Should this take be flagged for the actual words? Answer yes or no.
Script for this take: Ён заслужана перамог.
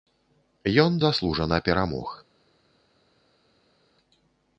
no